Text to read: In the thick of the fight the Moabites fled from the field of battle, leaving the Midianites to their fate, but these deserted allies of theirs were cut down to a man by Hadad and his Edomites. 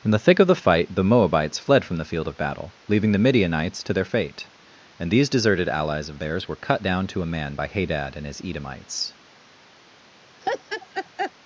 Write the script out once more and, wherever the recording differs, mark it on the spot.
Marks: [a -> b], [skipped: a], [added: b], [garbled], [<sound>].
In the thick of the fight the Moabites fled from the field of battle, leaving the Midianites to their fate, [but -> and] these deserted allies of theirs were cut down to a man by Hadad and his Edomites. [laugh]